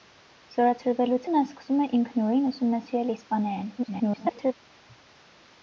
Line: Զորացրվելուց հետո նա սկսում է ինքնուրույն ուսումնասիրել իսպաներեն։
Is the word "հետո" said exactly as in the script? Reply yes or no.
no